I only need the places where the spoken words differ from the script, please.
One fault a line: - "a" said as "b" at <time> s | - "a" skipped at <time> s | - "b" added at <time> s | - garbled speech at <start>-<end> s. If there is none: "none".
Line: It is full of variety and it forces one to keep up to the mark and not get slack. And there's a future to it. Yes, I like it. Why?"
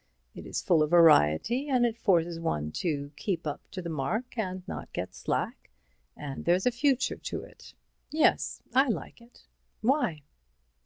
none